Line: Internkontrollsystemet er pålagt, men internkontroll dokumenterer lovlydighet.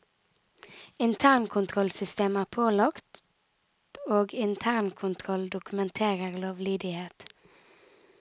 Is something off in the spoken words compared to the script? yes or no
yes